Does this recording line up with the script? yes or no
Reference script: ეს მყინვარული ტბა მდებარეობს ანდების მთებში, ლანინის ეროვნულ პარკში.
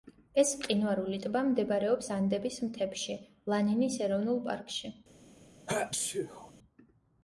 yes